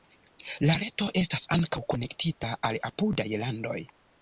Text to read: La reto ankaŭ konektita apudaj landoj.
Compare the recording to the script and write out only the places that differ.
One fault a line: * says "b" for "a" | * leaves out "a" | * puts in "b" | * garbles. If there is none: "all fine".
* puts in "estas"
* puts in "al"